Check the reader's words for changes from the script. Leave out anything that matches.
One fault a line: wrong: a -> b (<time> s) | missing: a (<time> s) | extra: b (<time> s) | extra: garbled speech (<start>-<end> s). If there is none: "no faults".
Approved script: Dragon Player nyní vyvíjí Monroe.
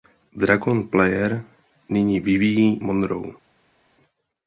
no faults